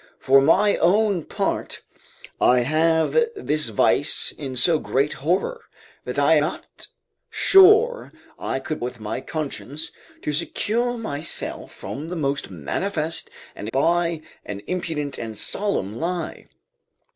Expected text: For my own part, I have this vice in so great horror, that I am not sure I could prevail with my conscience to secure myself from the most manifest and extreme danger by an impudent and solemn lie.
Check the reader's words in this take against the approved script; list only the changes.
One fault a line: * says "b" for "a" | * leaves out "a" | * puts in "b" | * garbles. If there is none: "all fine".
* leaves out "am"
* leaves out "prevail"
* leaves out "extreme danger"